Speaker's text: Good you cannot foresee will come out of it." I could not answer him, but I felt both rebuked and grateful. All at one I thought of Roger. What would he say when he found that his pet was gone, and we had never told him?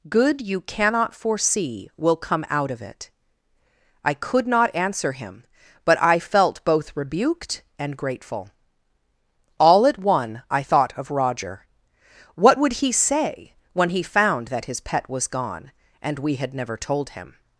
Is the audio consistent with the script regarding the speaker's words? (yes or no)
yes